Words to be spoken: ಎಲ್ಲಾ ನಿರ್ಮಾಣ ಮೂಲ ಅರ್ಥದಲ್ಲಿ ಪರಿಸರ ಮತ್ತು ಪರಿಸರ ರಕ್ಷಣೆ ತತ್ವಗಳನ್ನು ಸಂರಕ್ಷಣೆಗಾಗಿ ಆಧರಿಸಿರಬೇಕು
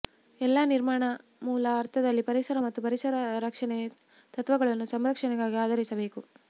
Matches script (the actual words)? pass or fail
pass